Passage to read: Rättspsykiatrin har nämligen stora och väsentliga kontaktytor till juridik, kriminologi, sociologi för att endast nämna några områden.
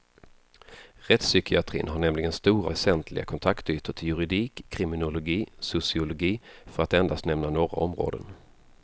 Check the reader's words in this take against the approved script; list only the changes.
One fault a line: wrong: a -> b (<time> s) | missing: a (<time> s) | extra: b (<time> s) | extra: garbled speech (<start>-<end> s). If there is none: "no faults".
missing: och (2.7 s)